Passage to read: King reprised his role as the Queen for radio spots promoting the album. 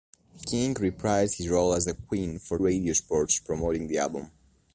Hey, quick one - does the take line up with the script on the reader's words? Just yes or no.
yes